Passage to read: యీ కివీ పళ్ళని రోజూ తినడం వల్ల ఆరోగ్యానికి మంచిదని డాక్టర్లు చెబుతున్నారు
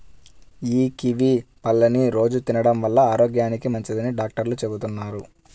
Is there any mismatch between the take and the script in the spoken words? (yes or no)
no